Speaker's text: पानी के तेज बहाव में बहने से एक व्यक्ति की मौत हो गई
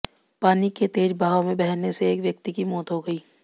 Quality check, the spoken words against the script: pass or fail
pass